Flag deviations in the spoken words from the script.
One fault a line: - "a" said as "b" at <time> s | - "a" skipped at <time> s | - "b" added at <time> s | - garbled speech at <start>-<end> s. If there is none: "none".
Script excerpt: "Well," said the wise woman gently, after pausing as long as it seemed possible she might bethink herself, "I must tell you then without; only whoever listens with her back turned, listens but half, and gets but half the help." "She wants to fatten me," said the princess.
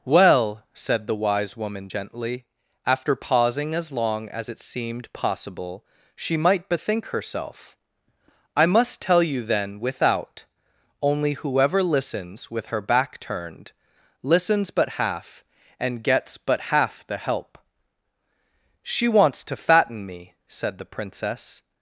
none